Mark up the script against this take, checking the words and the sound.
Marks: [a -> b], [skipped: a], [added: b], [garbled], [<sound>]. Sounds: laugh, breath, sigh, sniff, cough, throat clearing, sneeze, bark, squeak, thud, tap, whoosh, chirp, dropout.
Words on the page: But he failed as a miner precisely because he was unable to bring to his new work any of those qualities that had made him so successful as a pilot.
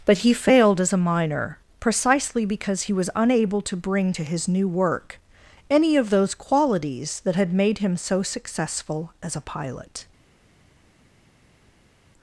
But he failed as a miner precisely because he was unable to bring to his new work any of those qualities that had made him so successful as a pilot.